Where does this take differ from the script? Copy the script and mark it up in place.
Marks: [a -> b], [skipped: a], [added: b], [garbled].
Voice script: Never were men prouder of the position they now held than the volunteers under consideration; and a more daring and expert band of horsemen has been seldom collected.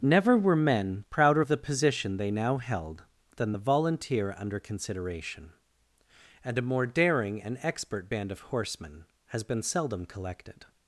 Never were men prouder of the position they now held than the [volunteers -> volunteer] under consideration; and a more daring and expert band of horsemen has been seldom collected.